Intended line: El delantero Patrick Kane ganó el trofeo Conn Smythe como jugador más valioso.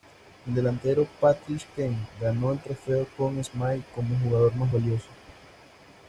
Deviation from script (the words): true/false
false